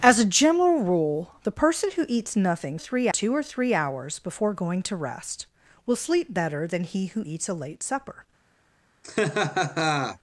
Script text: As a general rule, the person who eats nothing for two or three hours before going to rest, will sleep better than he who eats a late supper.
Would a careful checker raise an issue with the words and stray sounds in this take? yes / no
yes